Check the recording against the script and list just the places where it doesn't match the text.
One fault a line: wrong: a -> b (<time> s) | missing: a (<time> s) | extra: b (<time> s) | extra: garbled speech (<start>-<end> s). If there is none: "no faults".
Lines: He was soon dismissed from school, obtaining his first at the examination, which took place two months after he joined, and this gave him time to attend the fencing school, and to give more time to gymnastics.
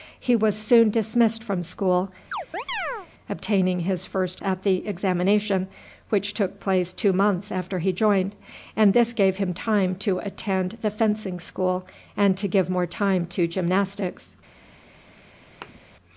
no faults